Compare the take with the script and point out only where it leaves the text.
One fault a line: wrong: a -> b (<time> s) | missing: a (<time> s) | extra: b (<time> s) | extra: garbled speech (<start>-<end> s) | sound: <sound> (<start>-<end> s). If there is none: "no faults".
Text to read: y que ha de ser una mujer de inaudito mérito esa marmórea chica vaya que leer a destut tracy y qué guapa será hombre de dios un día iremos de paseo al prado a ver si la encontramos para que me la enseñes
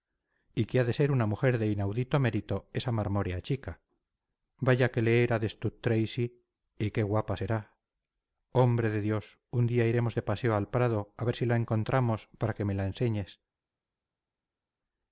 no faults